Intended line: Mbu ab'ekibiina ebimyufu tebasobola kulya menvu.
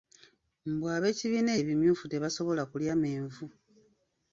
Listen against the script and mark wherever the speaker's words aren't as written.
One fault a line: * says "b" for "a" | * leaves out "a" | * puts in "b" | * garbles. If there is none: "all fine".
all fine